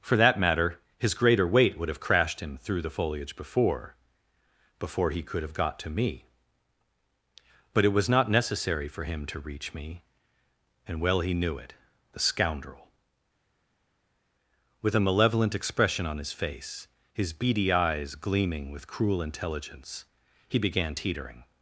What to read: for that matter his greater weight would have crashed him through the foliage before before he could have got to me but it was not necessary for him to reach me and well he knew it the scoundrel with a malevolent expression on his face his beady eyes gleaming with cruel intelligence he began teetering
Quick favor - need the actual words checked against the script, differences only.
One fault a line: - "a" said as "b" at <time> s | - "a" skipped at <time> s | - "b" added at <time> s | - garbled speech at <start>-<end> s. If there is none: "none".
none